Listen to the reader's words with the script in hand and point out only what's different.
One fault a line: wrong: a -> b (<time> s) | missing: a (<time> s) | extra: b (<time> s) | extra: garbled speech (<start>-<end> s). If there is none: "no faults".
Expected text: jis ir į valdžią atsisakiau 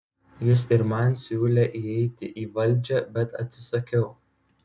extra: man siūlė įeiti (0.9 s)
extra: bet (3.2 s)